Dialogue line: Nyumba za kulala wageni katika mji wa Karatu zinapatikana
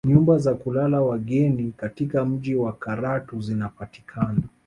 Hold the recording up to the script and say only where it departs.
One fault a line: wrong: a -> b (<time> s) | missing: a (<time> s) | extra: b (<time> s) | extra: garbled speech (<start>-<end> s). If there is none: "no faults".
no faults